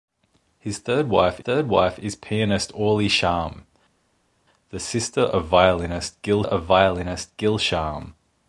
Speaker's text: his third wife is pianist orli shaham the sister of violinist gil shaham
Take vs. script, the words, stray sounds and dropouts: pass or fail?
fail